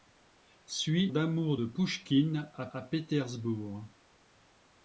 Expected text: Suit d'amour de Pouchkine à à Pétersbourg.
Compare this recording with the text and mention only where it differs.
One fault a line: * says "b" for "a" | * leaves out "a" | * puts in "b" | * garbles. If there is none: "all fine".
all fine